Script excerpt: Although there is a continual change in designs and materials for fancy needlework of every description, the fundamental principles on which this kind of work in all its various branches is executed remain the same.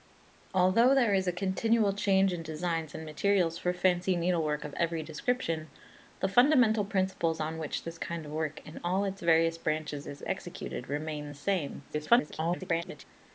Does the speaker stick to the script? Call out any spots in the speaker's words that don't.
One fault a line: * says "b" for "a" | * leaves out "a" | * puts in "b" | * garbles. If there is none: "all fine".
* garbles